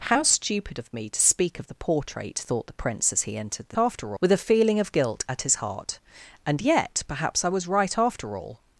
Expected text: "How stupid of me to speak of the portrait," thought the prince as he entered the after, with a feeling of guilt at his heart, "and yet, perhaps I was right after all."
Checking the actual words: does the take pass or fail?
pass